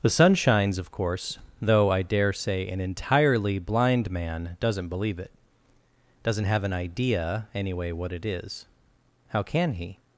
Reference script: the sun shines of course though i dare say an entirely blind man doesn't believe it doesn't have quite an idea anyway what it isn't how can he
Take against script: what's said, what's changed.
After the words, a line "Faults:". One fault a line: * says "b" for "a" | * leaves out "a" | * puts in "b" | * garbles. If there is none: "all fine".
the sun shines of course though i dare say an entirely blind man doesn't believe it doesn't have an idea anyway what it is how can he
Faults:
* leaves out "quite"
* says "is" for "isn't"